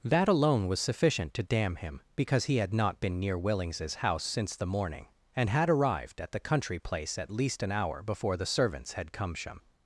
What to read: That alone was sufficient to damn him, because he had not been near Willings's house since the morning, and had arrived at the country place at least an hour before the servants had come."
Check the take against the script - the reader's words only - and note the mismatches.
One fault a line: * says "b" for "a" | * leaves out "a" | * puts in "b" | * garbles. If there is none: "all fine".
all fine